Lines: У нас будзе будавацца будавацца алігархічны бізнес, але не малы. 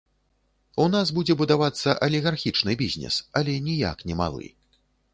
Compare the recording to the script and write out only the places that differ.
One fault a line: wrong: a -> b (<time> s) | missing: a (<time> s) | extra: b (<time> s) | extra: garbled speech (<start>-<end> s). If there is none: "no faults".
missing: будавацца (1.9 s)
extra: ніяк (3.7 s)